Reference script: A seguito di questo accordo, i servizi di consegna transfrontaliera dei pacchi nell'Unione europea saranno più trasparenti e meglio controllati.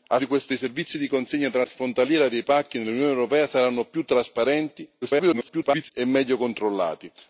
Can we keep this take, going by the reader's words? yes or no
no